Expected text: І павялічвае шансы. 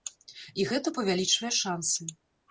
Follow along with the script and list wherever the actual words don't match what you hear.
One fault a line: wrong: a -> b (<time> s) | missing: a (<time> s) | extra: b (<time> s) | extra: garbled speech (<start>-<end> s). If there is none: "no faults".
extra: гэта (0.7 s)